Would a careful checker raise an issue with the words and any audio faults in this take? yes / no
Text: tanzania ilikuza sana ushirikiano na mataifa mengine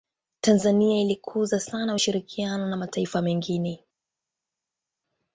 no